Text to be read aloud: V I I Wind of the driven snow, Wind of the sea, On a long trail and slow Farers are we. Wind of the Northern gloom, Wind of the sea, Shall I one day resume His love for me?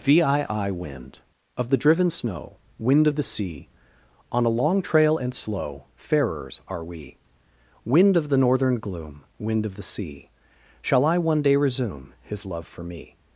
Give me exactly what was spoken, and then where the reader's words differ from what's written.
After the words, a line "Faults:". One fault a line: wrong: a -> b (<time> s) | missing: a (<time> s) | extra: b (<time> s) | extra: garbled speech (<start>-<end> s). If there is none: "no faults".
V I I Wind of the driven snow, Wind of the sea, On a long trail and slow Farers are we. Wind of the Northern gloom, Wind of the sea, Shall I one day resume His love for me?
Faults:
no faults